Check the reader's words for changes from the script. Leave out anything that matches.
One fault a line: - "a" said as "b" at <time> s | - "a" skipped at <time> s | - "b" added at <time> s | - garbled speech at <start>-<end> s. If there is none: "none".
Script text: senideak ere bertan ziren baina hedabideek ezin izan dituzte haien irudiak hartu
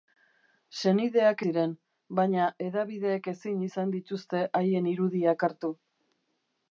- "ere bertan" skipped at 1.4 s